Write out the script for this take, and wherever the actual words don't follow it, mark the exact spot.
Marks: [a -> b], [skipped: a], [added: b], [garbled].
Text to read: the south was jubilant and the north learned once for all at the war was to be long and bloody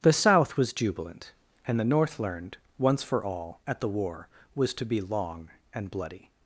the south was jubilant and the north learned once for all at the war was to be long and bloody